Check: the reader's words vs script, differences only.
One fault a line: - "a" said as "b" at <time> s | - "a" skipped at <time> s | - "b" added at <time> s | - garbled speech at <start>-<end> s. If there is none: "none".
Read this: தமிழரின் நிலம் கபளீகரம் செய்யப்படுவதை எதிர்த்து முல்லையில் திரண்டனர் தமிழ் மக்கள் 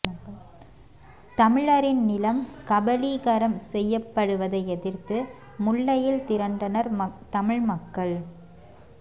none